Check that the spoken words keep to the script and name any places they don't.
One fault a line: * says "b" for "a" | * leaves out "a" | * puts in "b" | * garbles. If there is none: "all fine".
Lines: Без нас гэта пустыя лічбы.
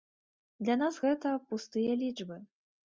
* says "Для" for "Без"